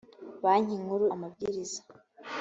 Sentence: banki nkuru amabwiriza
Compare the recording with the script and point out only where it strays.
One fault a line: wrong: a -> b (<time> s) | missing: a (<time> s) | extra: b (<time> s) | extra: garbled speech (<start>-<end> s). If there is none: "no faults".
no faults